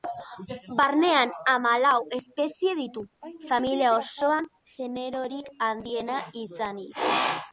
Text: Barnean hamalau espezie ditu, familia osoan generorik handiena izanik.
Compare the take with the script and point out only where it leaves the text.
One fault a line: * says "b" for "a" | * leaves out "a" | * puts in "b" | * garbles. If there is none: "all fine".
all fine